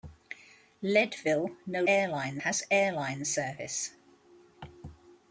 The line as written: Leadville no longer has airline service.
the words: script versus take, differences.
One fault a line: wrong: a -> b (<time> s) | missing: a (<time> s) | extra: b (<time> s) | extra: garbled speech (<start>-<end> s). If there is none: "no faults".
wrong: longer -> airline (1.9 s)